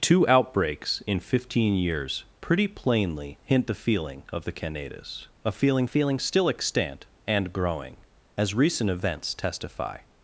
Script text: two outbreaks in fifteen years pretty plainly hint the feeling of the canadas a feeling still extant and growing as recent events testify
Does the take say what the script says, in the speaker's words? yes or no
no